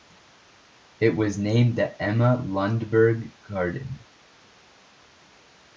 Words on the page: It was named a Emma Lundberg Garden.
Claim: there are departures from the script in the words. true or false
true